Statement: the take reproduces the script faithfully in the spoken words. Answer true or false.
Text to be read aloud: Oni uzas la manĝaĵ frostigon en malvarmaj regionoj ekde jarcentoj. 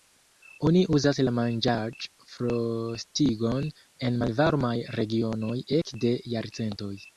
true